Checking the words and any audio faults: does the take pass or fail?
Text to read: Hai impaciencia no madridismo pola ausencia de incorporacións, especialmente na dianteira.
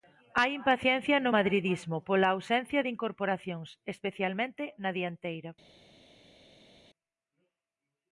pass